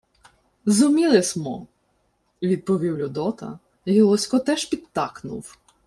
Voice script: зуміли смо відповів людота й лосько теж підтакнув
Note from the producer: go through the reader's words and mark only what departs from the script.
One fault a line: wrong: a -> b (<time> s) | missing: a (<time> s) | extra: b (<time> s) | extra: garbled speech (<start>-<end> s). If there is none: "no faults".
no faults